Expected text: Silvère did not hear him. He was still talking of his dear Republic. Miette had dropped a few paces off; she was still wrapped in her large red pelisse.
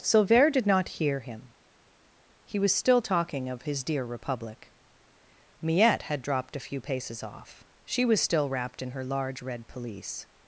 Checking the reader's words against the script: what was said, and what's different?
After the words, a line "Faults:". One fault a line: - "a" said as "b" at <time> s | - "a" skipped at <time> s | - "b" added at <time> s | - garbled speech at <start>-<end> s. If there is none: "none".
Silvère did not hear him. He was still talking of his dear Republic. Miette had dropped a few paces off; she was still wrapped in her large red pelisse.
Faults:
none